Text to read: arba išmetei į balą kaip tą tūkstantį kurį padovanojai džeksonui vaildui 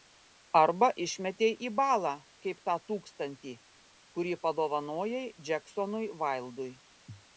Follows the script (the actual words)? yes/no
yes